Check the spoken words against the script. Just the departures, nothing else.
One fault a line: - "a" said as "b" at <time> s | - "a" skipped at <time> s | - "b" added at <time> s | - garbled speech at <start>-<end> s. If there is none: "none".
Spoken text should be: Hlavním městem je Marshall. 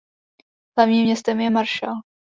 none